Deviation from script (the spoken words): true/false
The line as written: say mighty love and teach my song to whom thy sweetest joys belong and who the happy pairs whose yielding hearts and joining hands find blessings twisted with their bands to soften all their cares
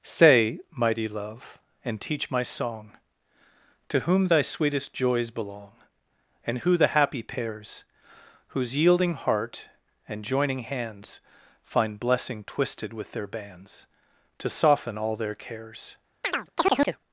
true